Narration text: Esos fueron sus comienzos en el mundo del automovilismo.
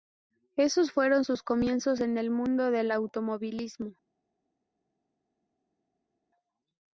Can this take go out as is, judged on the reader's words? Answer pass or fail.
pass